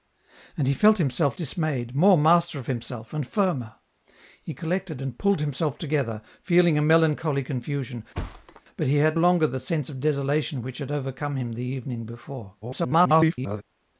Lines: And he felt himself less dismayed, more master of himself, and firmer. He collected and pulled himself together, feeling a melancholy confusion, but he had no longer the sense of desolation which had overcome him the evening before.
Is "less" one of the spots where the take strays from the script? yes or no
yes